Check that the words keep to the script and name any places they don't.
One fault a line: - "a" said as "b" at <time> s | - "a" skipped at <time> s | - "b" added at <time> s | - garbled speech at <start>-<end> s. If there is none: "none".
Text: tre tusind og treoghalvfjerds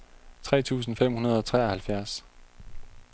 - "fem hundrede" added at 0.9 s